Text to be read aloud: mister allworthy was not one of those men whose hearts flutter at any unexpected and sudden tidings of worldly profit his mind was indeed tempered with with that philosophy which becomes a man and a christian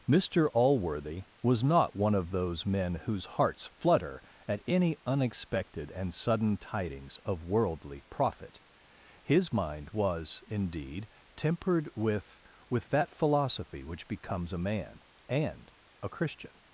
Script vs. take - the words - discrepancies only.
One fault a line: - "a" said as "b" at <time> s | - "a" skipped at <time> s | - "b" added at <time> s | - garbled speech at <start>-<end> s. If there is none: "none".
none